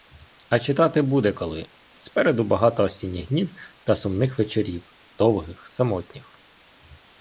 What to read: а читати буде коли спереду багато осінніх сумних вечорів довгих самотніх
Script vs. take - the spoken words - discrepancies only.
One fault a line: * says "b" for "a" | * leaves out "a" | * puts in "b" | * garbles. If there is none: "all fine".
* puts in "днів та"